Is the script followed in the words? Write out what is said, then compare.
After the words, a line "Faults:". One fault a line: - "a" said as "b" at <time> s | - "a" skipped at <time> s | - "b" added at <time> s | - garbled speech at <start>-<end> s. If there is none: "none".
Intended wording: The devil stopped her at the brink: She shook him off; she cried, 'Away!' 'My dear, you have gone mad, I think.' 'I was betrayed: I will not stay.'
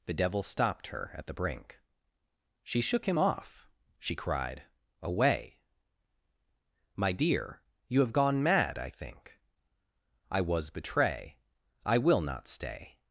The devil stopped her at the brink: She shook him off; she cried, 'Away!' 'My dear, you have gone mad, I think.' 'I was betray: I will not stay.'
Faults:
- "betrayed" said as "betray" at 10.7 s